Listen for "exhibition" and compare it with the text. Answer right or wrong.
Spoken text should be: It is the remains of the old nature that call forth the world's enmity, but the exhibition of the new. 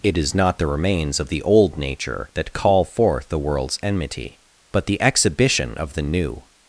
right